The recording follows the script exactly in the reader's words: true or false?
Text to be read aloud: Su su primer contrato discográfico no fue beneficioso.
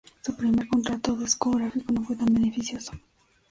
false